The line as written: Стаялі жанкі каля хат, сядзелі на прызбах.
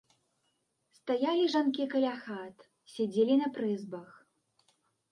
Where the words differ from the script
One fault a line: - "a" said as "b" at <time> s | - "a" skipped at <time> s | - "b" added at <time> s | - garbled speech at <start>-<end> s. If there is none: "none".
none